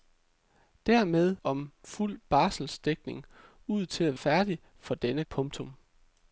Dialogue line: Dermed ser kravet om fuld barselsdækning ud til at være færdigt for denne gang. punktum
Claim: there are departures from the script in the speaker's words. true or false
true